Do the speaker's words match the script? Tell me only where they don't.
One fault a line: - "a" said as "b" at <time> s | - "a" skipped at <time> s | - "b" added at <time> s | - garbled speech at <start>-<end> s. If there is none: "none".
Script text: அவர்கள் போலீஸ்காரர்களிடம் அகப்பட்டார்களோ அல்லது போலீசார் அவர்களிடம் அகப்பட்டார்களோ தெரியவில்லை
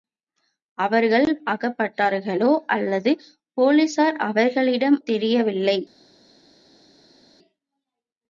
- "போலீஸ்காரர்களிடம்" skipped at 1.3 s
- "அகப்பட்டார்களோ" skipped at 5.0 s